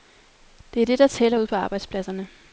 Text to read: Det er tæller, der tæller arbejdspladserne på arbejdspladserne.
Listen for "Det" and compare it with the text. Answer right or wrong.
right